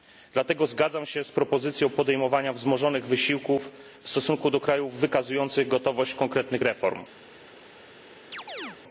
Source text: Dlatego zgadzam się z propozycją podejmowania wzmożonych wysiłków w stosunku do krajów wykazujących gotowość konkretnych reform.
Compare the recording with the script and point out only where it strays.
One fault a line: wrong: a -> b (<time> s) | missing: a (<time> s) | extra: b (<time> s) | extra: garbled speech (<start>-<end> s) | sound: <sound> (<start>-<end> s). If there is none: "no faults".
sound: chirp (8.3-8.8 s)